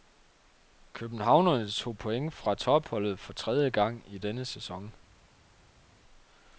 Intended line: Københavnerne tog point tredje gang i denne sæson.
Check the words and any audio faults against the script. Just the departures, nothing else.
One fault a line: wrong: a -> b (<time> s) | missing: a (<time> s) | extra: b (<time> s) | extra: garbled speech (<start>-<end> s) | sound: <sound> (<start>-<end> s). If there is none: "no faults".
extra: fra topholdet for (2.3 s)